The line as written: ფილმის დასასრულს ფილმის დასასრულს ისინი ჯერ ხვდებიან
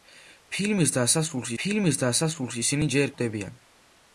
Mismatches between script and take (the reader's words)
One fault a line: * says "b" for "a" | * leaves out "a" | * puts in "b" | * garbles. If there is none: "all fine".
all fine